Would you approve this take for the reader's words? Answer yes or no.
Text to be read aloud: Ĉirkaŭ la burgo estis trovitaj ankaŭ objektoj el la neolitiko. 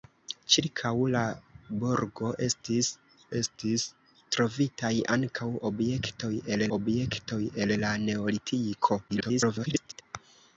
no